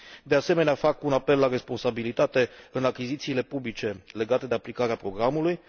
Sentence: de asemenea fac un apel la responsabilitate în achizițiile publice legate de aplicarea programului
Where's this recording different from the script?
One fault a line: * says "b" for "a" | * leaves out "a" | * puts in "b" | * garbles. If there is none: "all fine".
all fine